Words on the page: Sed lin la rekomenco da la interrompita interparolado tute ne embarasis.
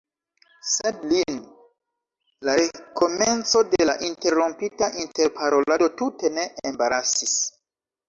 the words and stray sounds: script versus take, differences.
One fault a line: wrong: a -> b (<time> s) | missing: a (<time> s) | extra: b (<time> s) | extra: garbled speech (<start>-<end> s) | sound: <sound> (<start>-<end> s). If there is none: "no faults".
wrong: da -> de (3.7 s)